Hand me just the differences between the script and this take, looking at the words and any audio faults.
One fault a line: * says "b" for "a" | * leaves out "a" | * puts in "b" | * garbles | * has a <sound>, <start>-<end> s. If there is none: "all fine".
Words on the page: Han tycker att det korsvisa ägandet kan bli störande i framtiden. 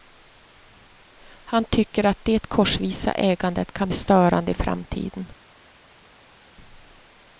* leaves out "bli"